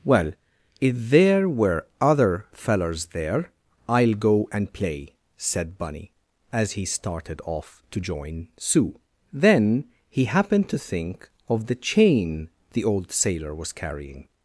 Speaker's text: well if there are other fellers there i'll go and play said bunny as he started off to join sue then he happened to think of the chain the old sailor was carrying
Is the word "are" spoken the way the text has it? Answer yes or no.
no